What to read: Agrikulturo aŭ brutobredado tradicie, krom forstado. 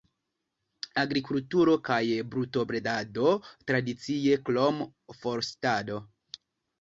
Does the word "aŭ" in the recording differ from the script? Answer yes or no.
yes